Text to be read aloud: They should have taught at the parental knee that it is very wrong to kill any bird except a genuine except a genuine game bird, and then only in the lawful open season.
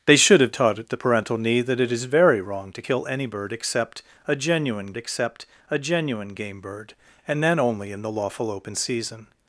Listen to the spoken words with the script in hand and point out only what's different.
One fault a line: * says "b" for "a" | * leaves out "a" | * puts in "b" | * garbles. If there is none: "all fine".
all fine